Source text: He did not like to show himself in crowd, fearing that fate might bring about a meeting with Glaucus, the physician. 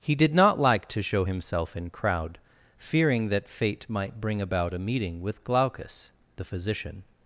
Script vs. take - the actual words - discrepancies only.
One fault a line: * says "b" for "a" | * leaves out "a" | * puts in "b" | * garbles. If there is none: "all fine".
all fine